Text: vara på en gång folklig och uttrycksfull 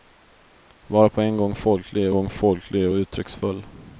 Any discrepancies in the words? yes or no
yes